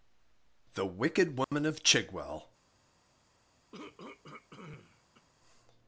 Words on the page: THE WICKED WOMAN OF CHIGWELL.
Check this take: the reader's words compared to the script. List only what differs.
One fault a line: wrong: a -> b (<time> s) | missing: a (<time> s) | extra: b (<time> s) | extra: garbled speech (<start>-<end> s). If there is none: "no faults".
no faults